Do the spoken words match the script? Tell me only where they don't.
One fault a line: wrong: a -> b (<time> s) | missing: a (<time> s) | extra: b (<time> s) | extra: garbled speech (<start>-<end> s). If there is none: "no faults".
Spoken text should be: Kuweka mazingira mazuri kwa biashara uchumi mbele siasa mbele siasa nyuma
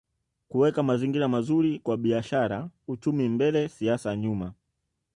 missing: mbele siasa (4.2 s)